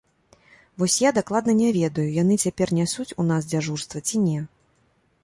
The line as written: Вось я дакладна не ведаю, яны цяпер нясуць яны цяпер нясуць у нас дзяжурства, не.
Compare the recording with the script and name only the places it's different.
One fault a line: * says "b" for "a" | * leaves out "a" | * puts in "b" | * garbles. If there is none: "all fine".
* leaves out "яны цяпер нясуць"
* puts in "ці"